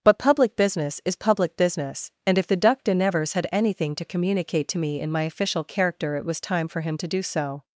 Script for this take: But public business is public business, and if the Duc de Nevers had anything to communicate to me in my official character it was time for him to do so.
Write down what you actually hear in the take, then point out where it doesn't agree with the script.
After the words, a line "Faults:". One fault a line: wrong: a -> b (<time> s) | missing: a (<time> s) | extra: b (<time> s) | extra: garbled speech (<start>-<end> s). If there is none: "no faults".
But public business is public business, and if the Duc de Nevers had anything to communicate to me in my official character it was time for him to do so.
Faults:
no faults